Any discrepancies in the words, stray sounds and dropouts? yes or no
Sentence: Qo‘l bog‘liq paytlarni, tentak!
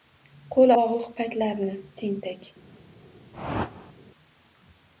yes